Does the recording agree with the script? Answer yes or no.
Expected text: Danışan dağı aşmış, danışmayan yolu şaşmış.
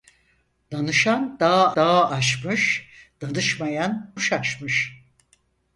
no